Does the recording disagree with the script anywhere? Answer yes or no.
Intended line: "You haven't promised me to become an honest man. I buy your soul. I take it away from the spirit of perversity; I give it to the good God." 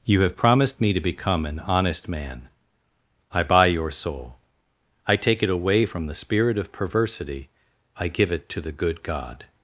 yes